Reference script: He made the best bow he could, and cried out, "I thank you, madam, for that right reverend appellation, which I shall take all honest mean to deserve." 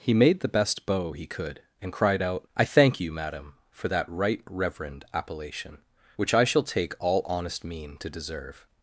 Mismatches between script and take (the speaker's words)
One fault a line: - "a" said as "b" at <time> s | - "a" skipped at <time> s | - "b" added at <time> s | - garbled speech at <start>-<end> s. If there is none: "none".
none